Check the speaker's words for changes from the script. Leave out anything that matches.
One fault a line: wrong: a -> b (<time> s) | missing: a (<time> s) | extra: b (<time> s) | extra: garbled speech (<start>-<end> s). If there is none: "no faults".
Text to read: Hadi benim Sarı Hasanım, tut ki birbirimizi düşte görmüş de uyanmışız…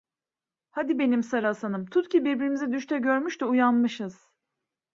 no faults